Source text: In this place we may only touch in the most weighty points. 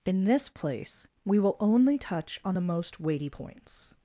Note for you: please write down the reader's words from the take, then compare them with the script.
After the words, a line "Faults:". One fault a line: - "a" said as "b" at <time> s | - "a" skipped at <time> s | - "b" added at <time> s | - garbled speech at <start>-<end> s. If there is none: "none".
In this place we will only touch on the most weighty points.
Faults:
- "may" said as "will" at 1.4 s
- "in" said as "on" at 2.4 s